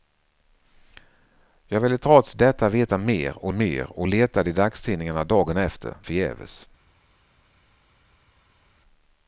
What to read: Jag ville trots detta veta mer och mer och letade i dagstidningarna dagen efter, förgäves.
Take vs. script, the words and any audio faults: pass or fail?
pass